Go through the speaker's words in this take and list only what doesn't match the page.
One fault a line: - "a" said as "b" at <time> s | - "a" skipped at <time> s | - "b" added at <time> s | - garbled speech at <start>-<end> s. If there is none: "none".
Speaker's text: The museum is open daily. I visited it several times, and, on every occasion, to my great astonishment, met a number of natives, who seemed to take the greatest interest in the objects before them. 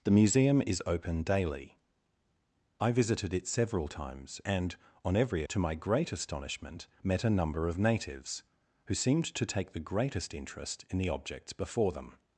- "occasion" skipped at 5.4 s